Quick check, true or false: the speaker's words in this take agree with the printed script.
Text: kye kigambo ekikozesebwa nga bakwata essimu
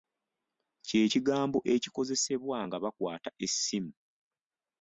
true